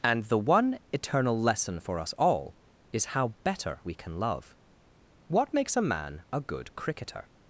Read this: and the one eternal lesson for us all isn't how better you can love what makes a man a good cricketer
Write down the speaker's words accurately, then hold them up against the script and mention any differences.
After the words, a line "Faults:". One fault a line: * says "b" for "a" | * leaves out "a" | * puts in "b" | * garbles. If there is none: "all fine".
and the one eternal lesson for us all is how better we can love what makes a man a good cricketer
Faults:
* says "is" for "isn't"
* says "we" for "you"